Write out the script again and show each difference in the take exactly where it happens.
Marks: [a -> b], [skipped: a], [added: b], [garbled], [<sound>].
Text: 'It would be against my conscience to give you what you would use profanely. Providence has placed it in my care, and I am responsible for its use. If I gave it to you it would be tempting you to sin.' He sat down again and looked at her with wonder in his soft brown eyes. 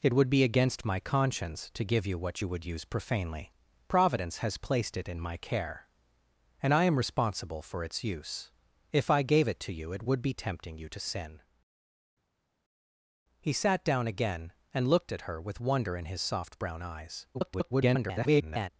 'It would be against my conscience to give you what you would use profanely. Providence has placed it in my care, and I am responsible for its use. If I gave it to you it would be tempting you to sin.' He sat down again and looked at her with wonder in his soft brown eyes. [garbled]